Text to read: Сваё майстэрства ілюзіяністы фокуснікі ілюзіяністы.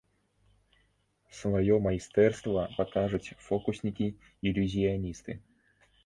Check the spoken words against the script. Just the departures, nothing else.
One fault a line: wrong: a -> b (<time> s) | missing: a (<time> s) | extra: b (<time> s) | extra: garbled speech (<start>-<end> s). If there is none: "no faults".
wrong: ілюзіяністы -> пакажуць (2.8 s)